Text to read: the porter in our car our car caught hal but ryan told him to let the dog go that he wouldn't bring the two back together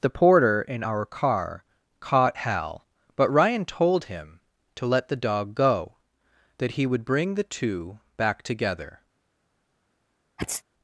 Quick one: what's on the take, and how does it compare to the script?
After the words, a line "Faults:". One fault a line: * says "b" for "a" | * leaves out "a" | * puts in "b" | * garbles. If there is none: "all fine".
the porter in our car caught hal but ryan told him to let the dog go that he would bring the two back together
Faults:
* leaves out "our car"
* says "would" for "wouldn't"